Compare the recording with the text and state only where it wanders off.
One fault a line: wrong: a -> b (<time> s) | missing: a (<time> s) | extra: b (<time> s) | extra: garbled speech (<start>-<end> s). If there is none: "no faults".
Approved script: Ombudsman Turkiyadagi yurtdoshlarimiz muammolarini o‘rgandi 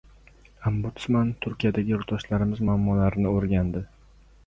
no faults